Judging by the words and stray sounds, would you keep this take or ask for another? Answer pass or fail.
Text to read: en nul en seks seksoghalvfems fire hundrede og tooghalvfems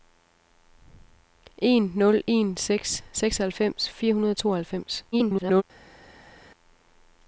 fail